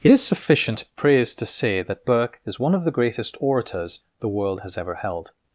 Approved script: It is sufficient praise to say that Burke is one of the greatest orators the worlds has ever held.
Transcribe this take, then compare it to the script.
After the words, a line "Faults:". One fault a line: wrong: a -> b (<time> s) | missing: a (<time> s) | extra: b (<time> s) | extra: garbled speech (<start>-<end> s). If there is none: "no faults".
It is sufficient praise to say that Burke is one of the greatest orators the world has ever held.
Faults:
wrong: worlds -> world (4.3 s)